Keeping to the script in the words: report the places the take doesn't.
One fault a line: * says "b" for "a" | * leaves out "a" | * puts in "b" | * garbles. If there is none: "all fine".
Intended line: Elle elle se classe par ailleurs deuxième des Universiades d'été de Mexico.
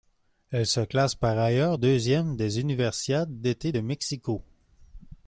* leaves out "elle"